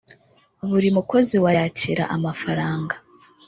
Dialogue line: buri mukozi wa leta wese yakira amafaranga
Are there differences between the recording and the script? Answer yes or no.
yes